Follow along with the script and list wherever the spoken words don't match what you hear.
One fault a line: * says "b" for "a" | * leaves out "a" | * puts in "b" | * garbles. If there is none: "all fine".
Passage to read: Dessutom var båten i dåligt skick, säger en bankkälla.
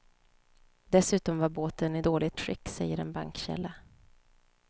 all fine